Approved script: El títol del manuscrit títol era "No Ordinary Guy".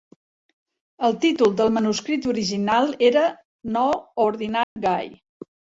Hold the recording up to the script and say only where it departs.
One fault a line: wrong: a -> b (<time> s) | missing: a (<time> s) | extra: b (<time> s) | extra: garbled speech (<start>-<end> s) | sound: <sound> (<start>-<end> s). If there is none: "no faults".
wrong: títol -> original (2.3 s)
sound: dropout (4.6-4.8 s)